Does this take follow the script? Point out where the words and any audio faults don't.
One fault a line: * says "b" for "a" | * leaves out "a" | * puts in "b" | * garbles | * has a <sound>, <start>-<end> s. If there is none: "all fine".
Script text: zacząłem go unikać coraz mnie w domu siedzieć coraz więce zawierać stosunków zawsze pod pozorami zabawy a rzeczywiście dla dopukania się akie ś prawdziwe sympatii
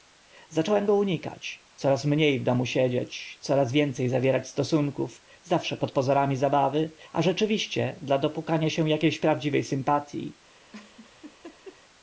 * has a laugh, 10.7-11.8 s